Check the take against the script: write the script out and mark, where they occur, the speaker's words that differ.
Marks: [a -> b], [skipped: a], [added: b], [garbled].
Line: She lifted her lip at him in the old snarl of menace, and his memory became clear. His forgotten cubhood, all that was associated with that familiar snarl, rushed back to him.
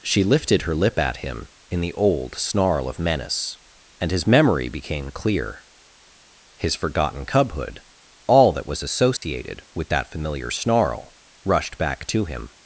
She lifted her lip at him in the old snarl of menace, and his memory became clear. His forgotten cubhood, all that was associated with that familiar snarl, rushed back to him.